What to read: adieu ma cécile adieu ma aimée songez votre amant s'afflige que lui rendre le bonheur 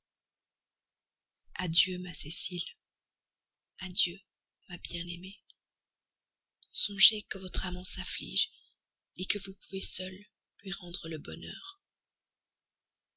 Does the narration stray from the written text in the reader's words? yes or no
yes